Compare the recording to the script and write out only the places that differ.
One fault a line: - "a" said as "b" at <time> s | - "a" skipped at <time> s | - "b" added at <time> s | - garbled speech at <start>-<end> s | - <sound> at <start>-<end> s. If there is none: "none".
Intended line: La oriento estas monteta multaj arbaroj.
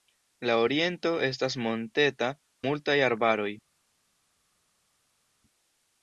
none